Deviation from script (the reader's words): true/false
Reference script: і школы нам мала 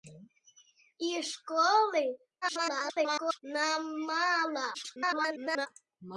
true